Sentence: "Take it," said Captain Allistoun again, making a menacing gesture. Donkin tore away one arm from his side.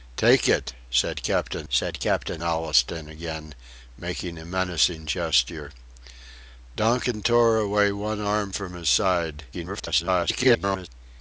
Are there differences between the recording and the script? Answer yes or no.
yes